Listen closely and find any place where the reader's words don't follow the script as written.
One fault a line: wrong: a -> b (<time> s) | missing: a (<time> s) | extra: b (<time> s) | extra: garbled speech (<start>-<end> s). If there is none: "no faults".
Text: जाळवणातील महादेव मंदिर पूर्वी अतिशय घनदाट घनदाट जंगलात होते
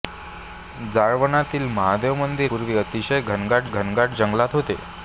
no faults